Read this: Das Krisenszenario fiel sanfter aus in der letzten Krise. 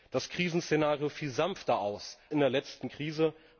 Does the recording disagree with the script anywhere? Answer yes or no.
no